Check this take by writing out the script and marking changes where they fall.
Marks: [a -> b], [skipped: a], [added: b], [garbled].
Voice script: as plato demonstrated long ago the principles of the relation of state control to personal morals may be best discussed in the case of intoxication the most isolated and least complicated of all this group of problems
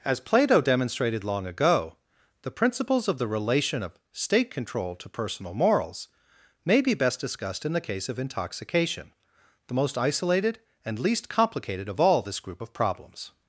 as plato demonstrated long ago the principles of the relation of state control to personal morals may be best discussed in the case of intoxication the most isolated and least complicated of all this group of problems